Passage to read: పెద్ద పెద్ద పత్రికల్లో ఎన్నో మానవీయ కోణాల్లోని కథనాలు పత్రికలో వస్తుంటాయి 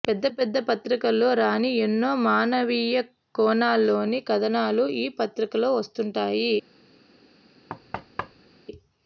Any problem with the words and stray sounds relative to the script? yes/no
yes